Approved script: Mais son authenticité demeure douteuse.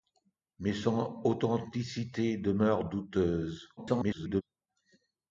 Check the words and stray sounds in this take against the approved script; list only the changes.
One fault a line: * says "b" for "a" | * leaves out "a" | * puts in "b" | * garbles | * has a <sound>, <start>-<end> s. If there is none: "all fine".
* garbles